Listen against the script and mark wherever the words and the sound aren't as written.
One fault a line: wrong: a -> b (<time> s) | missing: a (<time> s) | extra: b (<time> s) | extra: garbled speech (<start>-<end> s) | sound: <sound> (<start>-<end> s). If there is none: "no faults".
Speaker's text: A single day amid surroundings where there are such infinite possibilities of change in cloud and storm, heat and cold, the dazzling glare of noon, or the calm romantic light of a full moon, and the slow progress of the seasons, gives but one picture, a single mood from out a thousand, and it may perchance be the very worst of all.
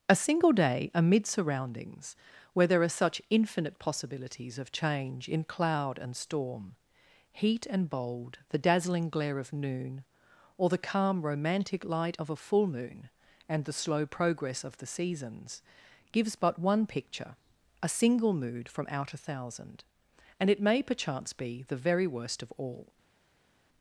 wrong: cold -> bold (7.9 s)